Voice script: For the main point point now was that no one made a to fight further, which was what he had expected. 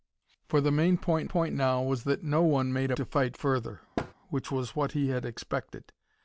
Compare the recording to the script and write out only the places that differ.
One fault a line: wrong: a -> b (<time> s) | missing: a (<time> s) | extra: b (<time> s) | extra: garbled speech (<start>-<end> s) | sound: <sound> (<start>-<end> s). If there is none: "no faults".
sound: thud (4.0-4.1 s)